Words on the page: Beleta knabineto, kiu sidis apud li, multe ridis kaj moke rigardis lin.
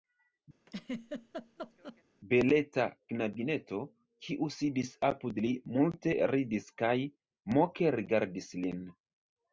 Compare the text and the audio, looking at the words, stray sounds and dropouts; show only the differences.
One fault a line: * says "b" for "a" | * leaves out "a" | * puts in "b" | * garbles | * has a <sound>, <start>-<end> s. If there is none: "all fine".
* has a laugh, 0.7-2.0 s